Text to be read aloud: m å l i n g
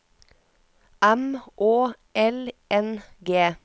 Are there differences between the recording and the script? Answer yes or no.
yes